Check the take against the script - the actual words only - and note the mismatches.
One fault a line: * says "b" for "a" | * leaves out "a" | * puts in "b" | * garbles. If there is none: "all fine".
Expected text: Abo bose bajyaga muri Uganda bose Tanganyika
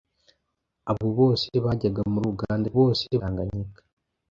all fine